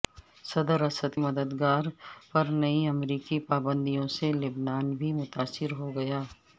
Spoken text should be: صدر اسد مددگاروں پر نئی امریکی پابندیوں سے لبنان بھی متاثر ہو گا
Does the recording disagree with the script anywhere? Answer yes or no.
no